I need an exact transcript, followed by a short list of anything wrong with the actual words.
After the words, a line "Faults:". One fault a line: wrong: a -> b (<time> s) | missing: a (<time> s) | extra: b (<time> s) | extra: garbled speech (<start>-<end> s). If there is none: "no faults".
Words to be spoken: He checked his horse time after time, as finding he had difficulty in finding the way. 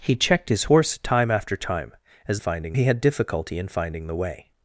He checked his horse time after time, as finding he had difficulty in finding the way.
Faults:
no faults